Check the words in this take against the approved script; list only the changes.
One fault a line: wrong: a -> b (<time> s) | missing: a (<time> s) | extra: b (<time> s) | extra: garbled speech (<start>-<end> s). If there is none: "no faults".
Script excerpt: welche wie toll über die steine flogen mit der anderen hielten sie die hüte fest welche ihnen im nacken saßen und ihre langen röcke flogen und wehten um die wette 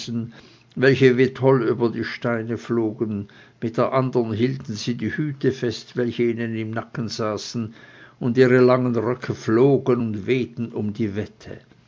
no faults